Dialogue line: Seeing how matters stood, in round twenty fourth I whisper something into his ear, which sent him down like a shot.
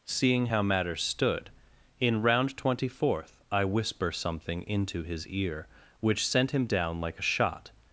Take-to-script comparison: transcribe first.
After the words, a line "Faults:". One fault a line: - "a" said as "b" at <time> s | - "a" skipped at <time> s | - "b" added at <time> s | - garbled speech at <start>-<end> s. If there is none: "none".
Seeing how matters stood, in round twenty fourth I whisper something into his ear, which sent him down like a shot.
Faults:
none